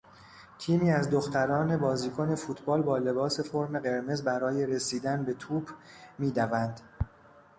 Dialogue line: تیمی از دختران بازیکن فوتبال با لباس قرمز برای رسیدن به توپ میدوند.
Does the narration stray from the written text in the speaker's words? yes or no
yes